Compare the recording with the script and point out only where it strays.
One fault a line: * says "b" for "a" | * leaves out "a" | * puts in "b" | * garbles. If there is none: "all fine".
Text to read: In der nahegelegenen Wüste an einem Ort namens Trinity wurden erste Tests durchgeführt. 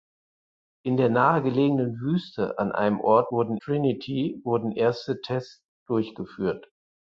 * says "wurden" for "namens"